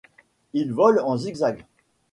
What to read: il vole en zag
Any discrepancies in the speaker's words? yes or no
yes